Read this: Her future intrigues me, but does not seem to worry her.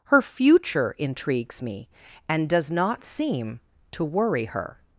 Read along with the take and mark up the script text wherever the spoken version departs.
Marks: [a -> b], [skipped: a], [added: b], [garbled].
Her future intrigues me, [but -> and] does not seem to worry her.